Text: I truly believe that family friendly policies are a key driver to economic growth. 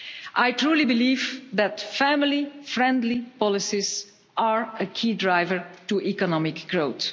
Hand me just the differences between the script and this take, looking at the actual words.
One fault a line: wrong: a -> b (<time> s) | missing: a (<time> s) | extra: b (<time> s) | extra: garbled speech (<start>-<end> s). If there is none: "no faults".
no faults